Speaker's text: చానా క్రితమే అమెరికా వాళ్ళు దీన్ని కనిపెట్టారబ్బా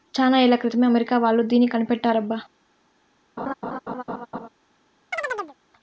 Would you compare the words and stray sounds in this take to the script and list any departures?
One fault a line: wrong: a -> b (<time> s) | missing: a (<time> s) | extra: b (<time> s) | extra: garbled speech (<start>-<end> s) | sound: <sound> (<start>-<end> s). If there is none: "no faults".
extra: ఏళ్ల (0.4 s)
sound: laugh (3.4-4.5 s)
sound: chirp (5.1-5.6 s)